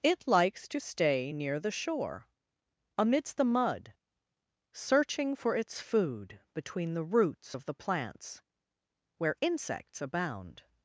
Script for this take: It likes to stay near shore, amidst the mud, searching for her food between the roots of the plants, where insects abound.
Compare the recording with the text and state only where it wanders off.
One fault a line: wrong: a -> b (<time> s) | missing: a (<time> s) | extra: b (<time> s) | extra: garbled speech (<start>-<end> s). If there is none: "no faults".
extra: the (1.6 s)
wrong: her -> its (5.6 s)